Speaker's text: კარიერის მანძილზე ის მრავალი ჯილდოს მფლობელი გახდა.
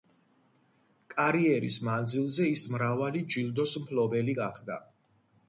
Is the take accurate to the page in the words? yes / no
yes